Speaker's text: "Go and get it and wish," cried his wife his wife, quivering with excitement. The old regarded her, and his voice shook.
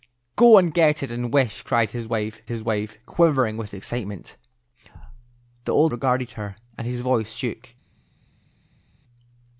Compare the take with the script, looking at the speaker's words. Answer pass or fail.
pass